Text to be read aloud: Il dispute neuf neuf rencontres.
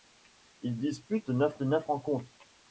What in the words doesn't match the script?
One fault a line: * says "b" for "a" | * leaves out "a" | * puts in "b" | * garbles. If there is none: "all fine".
all fine